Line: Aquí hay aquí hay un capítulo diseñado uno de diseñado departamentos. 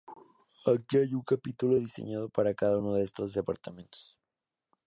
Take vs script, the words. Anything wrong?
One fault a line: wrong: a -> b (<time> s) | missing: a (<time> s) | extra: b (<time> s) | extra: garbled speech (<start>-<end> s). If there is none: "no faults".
missing: aquí hay (1.1 s)
extra: para cada (2.3 s)
wrong: diseñado -> estos (3.0 s)